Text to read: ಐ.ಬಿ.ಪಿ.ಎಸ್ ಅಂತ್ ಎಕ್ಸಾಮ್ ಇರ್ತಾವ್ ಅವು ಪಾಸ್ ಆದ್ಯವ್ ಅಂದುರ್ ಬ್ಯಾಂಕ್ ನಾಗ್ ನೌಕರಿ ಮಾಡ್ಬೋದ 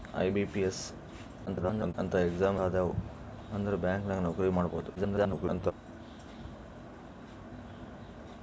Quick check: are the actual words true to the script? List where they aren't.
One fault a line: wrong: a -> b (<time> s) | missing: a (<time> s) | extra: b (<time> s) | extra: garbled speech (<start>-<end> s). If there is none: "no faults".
extra: garbled speech (1.5-1.9 s)
missing: ಇರ್ತಾವ್ ಅವು ಪಾಸ್ (2.6 s)
extra: garbled speech (5.0-5.7 s)